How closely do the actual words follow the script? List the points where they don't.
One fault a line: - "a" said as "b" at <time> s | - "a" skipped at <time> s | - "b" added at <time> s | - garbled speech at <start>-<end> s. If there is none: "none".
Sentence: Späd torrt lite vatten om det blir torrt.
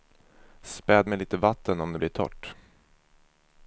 - "torrt" said as "med" at 1.1 s